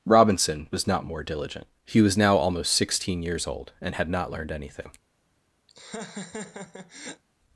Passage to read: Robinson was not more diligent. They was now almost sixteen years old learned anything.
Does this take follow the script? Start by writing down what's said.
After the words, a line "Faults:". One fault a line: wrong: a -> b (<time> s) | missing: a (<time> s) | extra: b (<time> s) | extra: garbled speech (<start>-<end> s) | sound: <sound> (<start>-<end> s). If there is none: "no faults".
Robinson was not more diligent. He was now almost sixteen years old and had not learned anything.
Faults:
wrong: They -> He (1.9 s)
extra: and had not (3.8 s)
sound: laugh (5.7-7.2 s)